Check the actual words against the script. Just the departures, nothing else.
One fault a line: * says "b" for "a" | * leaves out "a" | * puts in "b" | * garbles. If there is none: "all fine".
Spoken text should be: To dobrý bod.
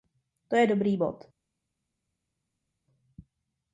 * puts in "je"